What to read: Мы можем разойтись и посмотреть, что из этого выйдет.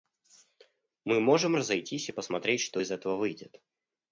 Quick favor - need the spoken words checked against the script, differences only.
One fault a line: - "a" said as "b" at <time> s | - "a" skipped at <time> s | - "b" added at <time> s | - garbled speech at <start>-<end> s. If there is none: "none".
none